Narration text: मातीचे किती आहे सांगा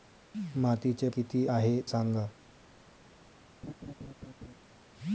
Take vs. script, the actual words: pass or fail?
pass